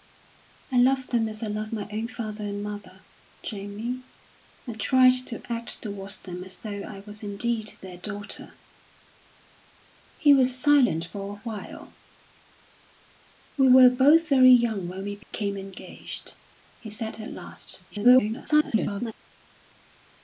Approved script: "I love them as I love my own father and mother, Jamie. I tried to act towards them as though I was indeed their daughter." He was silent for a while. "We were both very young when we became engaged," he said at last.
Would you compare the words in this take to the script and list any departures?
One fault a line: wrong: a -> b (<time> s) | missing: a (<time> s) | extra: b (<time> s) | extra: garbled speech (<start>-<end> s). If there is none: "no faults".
extra: garbled speech (17.9-19.1 s)